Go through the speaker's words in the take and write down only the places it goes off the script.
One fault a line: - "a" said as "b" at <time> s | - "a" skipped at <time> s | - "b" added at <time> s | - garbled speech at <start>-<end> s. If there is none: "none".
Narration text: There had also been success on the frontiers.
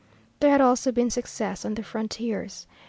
none